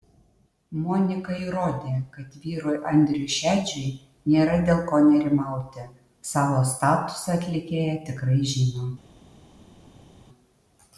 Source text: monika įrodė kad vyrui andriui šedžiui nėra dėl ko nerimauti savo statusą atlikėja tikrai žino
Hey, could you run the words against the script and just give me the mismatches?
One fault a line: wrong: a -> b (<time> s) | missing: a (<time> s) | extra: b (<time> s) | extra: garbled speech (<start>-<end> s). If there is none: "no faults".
no faults